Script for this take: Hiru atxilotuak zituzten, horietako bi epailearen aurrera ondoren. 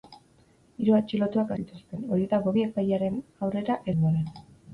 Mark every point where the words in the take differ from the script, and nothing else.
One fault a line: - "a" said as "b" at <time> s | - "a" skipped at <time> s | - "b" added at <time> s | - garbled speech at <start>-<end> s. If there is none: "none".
none